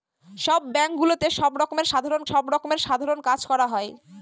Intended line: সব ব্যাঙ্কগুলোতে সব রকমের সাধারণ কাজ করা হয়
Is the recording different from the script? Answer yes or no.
yes